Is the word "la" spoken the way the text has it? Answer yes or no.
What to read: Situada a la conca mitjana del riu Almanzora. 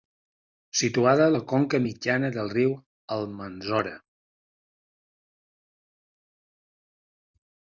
yes